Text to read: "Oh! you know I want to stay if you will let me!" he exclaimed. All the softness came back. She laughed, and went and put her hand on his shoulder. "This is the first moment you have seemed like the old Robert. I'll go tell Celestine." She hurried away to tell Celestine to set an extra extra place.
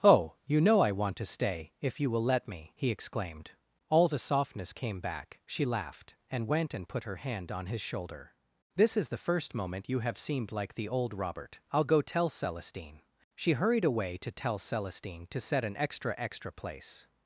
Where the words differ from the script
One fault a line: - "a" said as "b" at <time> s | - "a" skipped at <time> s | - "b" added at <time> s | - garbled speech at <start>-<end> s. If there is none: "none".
none